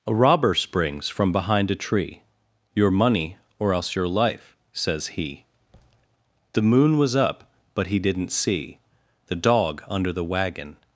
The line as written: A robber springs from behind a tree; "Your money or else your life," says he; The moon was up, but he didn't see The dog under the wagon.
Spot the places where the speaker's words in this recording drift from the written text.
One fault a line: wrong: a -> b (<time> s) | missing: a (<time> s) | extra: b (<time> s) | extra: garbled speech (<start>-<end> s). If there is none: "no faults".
no faults